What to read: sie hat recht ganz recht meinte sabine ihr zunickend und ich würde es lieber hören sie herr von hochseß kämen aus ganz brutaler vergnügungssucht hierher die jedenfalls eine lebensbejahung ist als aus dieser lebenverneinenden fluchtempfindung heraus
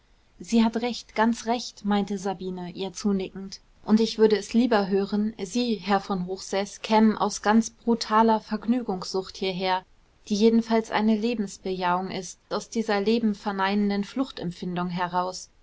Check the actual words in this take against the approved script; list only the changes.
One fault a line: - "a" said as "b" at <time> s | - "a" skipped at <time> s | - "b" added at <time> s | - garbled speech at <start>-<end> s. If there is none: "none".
- "als" skipped at 12.4 s